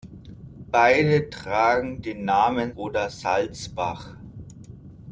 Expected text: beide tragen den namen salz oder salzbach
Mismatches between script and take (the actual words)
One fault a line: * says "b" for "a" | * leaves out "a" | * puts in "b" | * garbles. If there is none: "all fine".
* leaves out "salz"